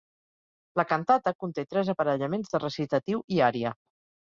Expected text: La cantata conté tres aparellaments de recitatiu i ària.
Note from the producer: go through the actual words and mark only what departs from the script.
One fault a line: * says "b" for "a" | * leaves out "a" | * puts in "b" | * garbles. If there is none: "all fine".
all fine